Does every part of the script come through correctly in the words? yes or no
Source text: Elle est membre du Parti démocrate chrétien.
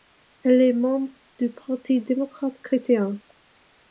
yes